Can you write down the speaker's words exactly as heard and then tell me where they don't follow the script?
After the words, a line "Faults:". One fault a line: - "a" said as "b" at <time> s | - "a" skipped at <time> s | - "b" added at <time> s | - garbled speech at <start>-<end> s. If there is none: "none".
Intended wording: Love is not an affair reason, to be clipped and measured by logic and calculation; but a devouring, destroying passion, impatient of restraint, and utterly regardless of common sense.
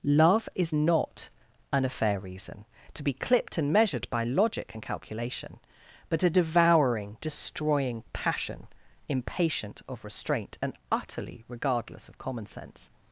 Love is not an affair reason, to be clipped and measured by logic and calculation; but a devouring, destroying passion, impatient of restraint, and utterly regardless of common sense.
Faults:
none